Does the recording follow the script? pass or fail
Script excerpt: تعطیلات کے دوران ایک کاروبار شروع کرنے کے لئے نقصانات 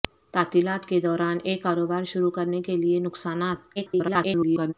fail